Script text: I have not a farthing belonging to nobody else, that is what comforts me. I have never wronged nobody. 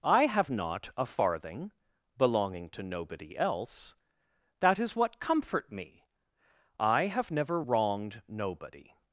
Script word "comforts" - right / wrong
wrong